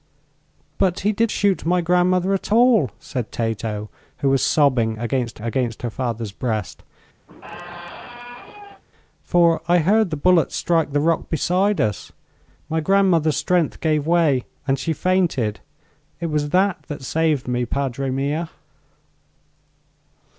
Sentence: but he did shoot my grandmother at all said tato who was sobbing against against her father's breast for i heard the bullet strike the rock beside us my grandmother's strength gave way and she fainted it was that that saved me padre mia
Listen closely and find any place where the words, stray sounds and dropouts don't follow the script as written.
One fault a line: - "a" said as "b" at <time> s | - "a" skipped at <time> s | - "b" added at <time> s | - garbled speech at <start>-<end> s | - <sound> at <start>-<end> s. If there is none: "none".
- squeak at 7.3-8.8 s